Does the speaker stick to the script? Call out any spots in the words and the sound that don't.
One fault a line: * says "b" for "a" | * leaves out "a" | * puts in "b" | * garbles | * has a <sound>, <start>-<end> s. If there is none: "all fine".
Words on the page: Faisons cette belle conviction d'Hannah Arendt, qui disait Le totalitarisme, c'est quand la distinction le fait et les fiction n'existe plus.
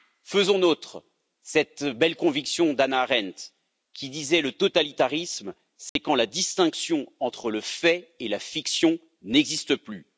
* puts in "nôtre"
* has a dropout, 5.9-6.0 s
* puts in "entre"
* says "la" for "les"